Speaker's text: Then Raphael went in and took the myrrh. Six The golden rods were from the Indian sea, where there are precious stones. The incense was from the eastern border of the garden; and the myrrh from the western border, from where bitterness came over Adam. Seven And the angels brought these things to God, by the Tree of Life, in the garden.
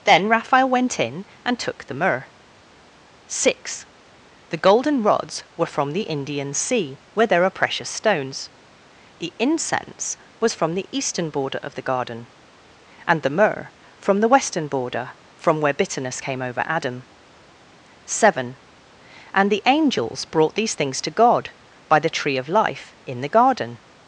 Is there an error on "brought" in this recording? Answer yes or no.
no